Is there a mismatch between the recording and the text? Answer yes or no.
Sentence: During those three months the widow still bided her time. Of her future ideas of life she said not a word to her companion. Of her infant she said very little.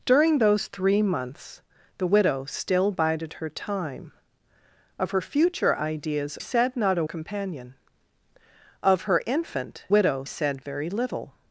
yes